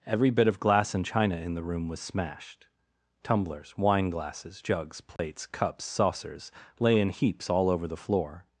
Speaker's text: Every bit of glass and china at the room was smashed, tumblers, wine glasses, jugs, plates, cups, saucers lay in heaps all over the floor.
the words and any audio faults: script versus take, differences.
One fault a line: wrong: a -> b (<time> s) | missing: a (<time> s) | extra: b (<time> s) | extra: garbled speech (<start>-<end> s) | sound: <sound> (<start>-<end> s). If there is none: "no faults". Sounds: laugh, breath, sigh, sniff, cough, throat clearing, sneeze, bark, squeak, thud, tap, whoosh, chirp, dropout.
wrong: at -> in (1.4 s)
sound: dropout (5.2-5.2 s)